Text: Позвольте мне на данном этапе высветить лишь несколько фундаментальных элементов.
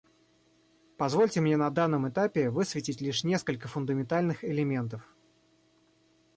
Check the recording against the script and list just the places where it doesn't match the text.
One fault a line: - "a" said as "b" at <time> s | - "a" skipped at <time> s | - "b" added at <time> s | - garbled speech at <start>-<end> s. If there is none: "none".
none